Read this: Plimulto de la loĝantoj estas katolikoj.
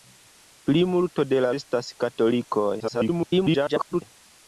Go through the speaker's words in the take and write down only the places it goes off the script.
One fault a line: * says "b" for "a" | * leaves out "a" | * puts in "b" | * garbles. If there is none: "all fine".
* leaves out "loĝantoj"
* garbles